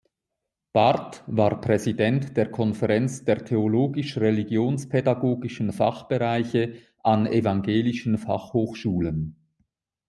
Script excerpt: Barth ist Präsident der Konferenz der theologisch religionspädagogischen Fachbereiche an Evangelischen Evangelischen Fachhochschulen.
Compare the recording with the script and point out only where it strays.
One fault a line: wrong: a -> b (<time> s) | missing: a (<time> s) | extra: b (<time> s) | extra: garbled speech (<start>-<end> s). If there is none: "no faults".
wrong: ist -> war (1.3 s)
missing: Evangelischen (8.2 s)